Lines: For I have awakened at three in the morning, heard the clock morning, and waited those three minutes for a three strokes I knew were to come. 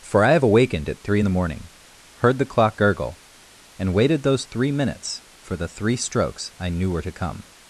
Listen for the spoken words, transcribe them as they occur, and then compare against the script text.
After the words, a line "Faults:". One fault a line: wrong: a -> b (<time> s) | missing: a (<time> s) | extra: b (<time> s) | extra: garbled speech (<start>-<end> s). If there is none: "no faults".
For I have awakened at three in the morning, heard the clock gurgle, and waited those three minutes for the three strokes I knew were to come.
Faults:
wrong: morning -> gurgle (2.8 s)
wrong: a -> the (5.6 s)